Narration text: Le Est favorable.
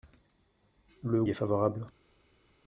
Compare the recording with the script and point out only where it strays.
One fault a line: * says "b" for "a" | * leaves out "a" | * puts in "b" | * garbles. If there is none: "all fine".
all fine